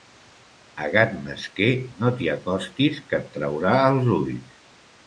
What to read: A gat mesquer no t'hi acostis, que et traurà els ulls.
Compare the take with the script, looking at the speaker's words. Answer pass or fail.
pass